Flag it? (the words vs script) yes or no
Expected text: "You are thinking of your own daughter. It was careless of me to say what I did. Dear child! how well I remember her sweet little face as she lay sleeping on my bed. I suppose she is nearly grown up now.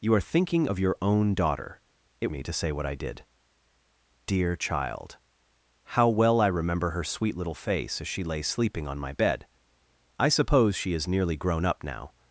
yes